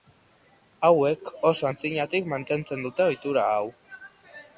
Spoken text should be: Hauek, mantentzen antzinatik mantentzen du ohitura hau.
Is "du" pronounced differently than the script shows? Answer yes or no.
yes